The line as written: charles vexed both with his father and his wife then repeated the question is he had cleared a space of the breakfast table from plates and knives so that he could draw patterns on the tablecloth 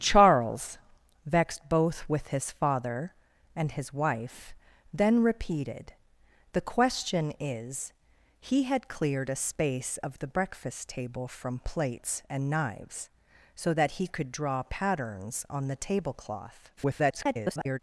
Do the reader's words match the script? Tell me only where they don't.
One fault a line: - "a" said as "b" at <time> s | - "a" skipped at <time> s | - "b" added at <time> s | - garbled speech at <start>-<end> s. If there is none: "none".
- garbled speech at 16.8-17.8 s